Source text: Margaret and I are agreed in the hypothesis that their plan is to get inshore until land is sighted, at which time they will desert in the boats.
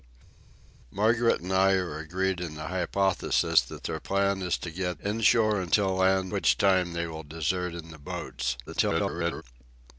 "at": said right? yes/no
no